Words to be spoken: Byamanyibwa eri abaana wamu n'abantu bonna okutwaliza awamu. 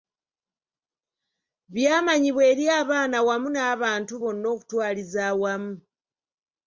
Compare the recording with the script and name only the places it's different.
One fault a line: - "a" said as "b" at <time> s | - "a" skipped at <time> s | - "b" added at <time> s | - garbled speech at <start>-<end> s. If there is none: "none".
none